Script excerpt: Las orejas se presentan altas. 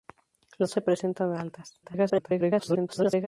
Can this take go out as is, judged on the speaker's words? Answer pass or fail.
fail